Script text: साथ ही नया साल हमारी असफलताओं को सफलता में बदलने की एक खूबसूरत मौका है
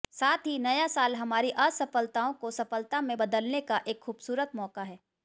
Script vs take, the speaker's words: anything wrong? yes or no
yes